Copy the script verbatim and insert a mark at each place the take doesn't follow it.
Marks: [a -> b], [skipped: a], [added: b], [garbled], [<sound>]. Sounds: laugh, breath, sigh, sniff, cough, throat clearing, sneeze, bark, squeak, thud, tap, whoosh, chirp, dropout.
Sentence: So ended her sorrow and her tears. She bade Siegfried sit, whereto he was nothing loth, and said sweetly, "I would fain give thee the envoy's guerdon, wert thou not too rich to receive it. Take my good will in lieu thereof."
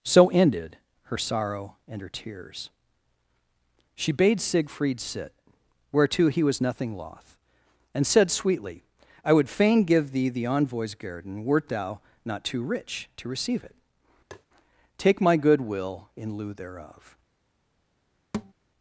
So ended her sorrow and her tears. She bade Siegfried sit, whereto he was nothing loth, and said sweetly, "I would fain give thee the envoy's guerdon, wert thou not too rich to receive it. [tap] Take my good will in lieu thereof." [thud]